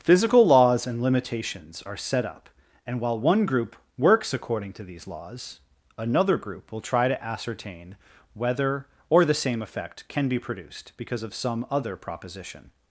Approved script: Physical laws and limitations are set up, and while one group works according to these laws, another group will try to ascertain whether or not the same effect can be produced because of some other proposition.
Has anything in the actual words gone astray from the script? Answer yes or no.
yes